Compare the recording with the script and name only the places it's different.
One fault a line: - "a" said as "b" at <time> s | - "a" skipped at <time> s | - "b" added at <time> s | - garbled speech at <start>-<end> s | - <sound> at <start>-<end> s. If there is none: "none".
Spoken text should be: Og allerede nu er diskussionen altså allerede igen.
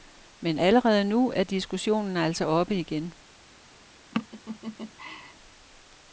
- "Og" said as "Men" at 0.4 s
- "allerede" said as "oppe" at 2.4 s
- laugh at 4.1-5.3 s